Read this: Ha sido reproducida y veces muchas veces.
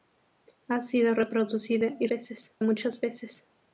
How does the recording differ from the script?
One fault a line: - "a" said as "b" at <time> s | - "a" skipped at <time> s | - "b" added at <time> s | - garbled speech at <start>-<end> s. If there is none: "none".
none